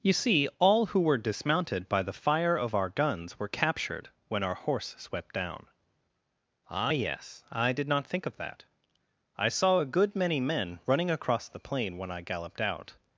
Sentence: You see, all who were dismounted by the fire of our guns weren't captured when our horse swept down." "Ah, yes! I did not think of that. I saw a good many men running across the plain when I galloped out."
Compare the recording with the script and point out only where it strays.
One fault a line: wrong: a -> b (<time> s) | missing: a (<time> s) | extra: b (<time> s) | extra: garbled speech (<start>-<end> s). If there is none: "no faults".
wrong: weren't -> were (3.4 s)